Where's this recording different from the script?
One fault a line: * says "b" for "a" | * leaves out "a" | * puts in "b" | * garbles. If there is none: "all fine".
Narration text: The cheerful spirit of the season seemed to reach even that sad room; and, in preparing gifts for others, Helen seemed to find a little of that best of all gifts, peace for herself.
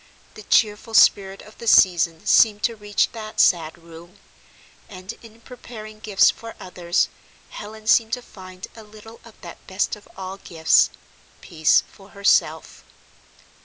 * leaves out "even"